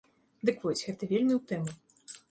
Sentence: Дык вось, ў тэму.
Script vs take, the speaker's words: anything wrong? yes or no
yes